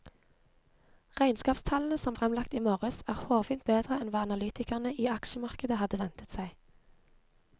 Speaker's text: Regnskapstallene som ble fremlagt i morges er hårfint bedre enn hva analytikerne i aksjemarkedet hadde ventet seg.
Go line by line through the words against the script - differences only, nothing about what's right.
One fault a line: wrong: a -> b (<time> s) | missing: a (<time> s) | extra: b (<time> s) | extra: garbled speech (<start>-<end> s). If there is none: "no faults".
missing: ble (2.1 s)